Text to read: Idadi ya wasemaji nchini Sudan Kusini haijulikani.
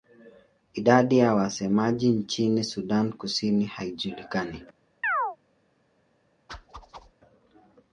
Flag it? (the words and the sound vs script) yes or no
yes